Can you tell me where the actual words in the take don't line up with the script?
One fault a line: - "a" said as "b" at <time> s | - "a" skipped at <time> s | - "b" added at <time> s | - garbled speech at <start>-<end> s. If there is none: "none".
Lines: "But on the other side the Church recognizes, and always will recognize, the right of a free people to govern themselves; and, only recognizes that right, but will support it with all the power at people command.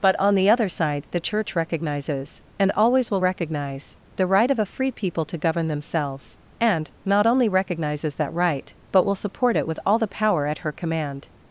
- "not" added at 7.0 s
- "people" said as "her" at 10.6 s